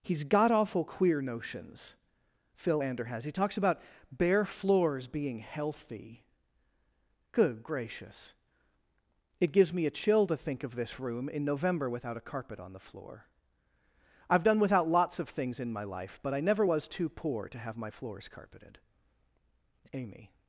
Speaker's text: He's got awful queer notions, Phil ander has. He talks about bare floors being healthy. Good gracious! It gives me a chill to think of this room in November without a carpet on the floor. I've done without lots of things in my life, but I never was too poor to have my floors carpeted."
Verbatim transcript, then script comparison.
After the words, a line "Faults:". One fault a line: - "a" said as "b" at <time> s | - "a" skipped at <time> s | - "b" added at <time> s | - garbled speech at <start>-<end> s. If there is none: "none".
He's got awful queer notions, Phil ander has. He talks about bare floors being healthy. Good gracious! It gives me a chill to think of this room in November without a carpet on the floor. I've done without lots of things in my life, but I never was too poor to have my floors carpeted." Amy
Faults:
- "Amy" added at 19.9 s